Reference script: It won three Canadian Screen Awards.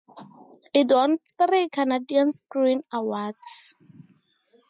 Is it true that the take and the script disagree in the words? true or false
false